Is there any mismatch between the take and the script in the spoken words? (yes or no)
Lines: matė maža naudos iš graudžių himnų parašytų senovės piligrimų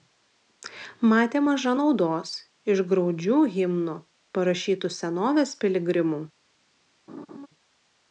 no